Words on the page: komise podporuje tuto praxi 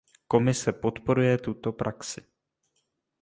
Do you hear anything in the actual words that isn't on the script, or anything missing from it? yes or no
no